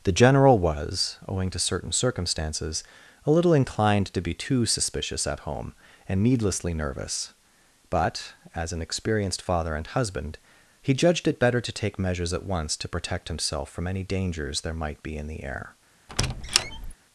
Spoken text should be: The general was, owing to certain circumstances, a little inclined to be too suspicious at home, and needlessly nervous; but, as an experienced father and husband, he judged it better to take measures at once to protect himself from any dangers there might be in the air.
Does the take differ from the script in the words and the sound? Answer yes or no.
yes